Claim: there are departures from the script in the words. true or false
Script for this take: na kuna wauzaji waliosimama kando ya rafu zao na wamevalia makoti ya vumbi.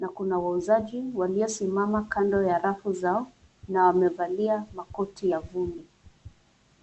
false